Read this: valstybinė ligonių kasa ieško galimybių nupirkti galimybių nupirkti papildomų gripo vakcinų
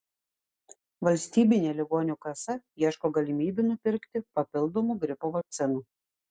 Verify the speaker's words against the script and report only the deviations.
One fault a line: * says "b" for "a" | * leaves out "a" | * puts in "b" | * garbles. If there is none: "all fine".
* leaves out "galimybių nupirkti"